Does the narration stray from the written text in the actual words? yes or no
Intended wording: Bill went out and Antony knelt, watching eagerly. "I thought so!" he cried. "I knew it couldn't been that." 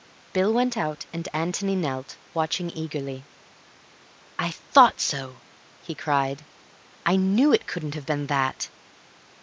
yes